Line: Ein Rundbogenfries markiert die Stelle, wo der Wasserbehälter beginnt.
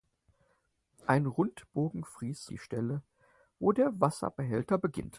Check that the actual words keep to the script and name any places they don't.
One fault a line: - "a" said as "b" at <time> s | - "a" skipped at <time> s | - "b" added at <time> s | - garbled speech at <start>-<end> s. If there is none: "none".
- "markiert" skipped at 2.5 s